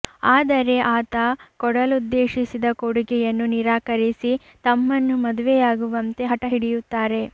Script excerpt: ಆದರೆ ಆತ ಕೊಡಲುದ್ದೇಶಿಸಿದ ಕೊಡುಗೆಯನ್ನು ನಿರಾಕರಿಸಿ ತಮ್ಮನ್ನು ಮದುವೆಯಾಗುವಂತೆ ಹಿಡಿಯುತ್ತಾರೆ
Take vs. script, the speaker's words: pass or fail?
fail